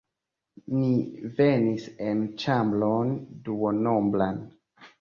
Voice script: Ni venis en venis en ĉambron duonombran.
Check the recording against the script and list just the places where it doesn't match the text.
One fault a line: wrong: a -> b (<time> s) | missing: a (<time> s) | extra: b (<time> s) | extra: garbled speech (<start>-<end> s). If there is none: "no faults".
missing: venis en (2.3 s)